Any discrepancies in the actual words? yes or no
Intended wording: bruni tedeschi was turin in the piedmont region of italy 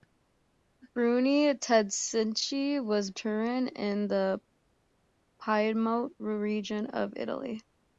no